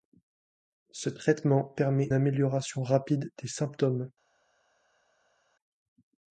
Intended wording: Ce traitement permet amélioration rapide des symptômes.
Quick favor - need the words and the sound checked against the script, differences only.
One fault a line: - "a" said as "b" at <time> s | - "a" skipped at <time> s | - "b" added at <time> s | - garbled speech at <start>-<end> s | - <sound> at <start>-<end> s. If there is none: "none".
none